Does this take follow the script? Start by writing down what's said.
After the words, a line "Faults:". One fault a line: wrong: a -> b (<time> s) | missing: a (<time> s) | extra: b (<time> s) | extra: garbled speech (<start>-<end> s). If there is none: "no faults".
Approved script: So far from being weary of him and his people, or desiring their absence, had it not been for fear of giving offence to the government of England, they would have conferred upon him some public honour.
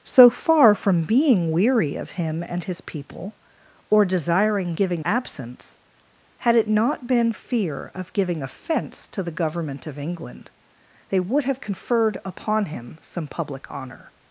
So far from being weary of him and his people, or desiring giving absence, had it not been fear of giving offence to the government of England, they would have conferred upon him some public honour.
Faults:
wrong: their -> giving (4.7 s)
missing: for (7.3 s)